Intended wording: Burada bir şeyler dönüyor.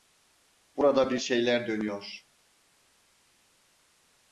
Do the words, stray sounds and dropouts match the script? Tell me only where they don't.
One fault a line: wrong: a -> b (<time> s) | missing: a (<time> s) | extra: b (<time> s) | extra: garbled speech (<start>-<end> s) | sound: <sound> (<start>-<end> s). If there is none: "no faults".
no faults